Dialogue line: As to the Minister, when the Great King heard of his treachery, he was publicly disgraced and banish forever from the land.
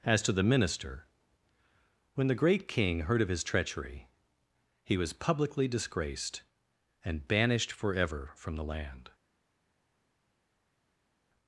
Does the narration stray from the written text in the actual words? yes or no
yes